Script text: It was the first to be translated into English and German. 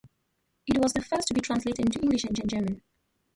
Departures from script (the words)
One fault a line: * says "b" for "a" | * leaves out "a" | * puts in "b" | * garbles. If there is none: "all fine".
* puts in "and"